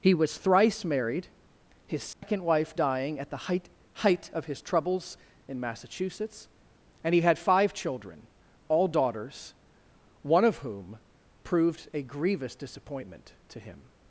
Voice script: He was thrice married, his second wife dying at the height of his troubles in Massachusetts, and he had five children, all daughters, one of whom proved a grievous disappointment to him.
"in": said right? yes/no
yes